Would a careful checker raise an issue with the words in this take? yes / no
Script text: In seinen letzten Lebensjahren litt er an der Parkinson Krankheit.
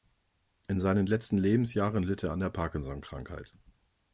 no